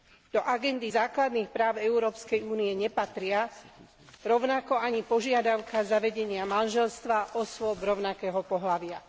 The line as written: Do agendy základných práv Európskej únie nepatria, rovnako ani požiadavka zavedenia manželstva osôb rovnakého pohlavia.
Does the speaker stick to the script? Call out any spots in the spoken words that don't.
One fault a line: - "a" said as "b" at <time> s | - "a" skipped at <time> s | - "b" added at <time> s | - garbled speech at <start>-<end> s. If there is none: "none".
none